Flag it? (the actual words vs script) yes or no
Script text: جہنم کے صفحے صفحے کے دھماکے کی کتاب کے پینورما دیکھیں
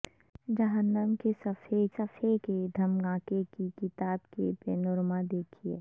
no